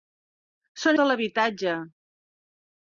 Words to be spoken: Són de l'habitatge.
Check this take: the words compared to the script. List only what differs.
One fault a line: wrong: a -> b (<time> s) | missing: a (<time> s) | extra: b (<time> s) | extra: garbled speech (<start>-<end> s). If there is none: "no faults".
no faults